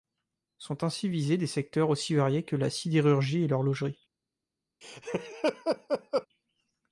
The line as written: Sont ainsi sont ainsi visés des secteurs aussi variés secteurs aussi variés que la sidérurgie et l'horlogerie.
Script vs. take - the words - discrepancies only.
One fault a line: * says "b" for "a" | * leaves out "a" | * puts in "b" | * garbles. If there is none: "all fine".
* leaves out "sont ainsi"
* leaves out "secteurs aussi variés"